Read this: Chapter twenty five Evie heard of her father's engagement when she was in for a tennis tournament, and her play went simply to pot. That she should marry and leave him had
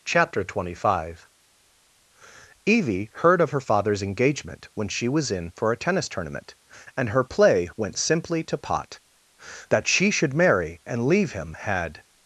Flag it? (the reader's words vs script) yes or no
no